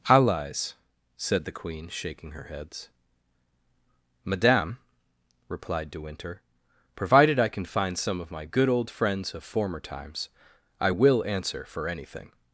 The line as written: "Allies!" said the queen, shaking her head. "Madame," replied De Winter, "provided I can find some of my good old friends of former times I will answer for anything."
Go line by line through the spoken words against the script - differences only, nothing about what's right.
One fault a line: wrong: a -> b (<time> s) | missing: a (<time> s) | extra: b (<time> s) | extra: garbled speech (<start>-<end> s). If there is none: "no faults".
wrong: head -> heads (2.5 s)